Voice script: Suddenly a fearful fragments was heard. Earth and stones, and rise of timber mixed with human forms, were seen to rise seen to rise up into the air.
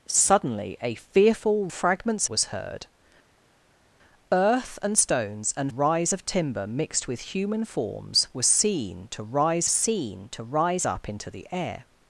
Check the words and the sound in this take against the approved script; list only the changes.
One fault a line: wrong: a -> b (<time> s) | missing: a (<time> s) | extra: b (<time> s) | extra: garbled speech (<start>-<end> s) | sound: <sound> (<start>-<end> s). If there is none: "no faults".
no faults